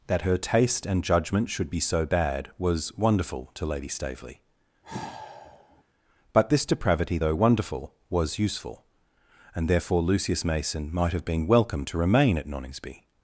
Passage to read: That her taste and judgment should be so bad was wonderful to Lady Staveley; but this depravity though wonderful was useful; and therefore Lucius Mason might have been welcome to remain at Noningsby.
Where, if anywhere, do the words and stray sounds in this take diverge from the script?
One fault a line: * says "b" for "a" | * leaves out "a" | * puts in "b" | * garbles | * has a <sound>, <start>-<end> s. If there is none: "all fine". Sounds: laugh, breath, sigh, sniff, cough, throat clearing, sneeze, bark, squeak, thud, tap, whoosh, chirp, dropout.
* has a sigh, 4.8-5.8 s